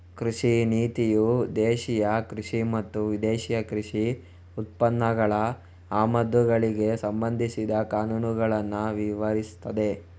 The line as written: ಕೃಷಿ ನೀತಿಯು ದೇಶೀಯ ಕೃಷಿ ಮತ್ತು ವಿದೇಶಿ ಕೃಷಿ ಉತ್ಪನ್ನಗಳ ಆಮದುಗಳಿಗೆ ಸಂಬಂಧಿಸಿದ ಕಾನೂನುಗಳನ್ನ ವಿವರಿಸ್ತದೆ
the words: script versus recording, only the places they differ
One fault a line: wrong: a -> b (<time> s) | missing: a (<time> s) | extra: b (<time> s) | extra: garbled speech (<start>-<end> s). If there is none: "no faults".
no faults